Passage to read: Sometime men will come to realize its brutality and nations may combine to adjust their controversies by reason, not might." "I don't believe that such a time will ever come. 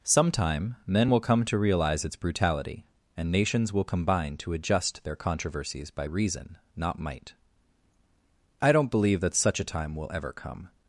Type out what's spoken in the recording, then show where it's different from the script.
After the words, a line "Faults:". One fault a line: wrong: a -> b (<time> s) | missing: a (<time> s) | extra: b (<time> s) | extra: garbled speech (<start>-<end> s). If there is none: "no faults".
Sometime men will come to realize its brutality and nations will combine to adjust their controversies by reason, not might." "I don't believe that such a time will ever come.
Faults:
wrong: may -> will (3.7 s)